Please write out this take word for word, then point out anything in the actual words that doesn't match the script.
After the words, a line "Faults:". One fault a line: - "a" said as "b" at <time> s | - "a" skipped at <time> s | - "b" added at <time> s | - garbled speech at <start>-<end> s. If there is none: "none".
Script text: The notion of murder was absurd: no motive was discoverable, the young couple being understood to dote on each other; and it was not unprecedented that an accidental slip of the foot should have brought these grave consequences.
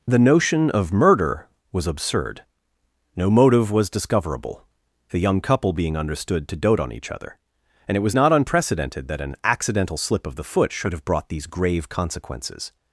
The notion of murder was absurd: no motive was discoverable, the young couple being understood to dote on each other; and it was not unprecedented that an accidental slip of the foot should have brought these grave consequences.
Faults:
none